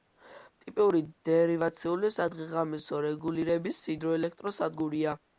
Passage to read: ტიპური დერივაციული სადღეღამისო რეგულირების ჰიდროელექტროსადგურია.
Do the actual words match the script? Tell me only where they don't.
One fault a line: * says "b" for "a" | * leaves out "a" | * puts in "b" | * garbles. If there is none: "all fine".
all fine